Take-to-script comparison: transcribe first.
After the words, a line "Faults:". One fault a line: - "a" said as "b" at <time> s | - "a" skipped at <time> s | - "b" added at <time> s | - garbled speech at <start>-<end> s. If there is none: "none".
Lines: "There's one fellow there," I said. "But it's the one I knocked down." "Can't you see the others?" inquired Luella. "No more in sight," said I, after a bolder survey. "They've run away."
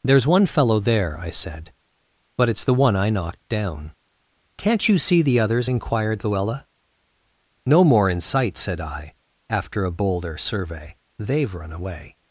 "There's one fellow there," I said. "But it's the one I knocked down." "Can't you see the others?" inquired Luella. "No more in sight," said I, after a bolder survey. "They've run away."
Faults:
none